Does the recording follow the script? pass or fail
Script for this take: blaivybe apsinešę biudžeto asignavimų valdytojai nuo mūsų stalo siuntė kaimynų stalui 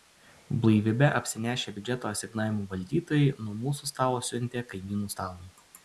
pass